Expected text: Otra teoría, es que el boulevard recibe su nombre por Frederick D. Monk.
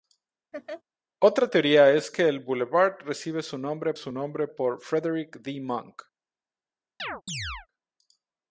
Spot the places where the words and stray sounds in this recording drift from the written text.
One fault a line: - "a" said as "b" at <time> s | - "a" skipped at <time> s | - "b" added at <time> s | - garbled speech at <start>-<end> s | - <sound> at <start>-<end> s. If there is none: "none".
- laugh at 0.5-0.8 s
- "su nombre" added at 3.9 s
- chirp at 7.0-7.7 s